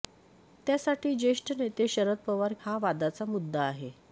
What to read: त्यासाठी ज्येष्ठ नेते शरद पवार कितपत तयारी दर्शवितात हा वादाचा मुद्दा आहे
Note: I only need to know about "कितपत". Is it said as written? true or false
false